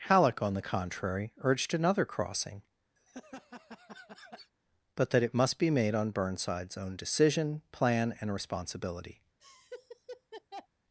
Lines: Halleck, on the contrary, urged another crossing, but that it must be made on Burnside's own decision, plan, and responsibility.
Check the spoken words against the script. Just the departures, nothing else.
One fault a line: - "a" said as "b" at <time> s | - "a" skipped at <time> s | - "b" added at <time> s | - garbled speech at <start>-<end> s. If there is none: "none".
none